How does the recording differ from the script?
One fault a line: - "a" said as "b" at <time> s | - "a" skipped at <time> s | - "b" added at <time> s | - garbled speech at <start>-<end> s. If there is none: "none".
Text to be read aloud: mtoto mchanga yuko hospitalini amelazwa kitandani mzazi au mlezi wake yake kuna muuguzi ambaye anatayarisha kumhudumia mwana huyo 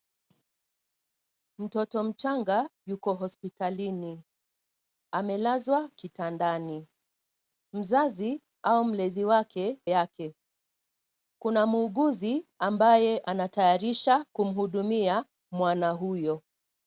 none